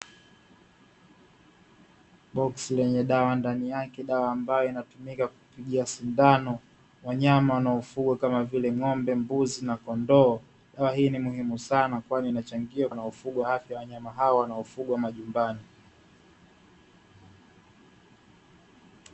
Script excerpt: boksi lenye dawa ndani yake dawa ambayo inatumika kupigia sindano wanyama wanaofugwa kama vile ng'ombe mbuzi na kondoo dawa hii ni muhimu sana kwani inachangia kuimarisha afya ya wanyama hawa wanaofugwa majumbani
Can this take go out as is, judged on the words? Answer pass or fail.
fail